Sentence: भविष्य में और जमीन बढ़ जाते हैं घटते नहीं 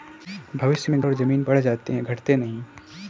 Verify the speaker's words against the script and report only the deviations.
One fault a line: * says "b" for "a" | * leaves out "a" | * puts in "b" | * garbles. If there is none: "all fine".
all fine